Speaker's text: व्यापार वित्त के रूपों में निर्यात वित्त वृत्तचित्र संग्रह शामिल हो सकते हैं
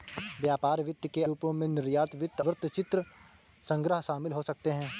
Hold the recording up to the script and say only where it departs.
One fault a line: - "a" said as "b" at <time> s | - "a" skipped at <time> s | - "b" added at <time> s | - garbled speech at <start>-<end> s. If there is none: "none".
none